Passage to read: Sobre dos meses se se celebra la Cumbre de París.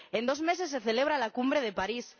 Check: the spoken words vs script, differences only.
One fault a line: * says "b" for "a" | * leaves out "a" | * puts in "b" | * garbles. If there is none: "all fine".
* says "En" for "Sobre"
* leaves out "se"